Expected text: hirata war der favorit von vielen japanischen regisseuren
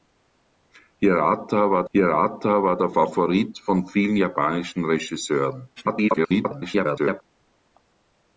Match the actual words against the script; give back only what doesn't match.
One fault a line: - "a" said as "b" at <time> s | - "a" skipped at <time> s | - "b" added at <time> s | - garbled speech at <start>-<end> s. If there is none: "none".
- "hirata war" added at 1.9 s
- garbled speech at 5.8-7.2 s